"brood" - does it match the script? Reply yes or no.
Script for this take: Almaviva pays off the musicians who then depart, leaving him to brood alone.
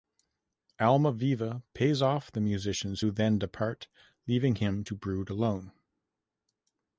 yes